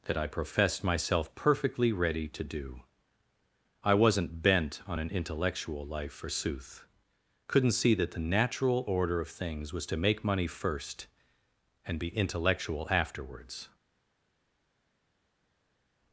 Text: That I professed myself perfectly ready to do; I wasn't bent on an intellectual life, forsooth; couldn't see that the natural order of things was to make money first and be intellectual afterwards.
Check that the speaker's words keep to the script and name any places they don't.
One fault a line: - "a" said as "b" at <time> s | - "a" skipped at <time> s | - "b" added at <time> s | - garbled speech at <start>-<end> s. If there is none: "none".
none